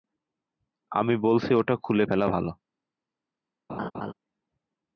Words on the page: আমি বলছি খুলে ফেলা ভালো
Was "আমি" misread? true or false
false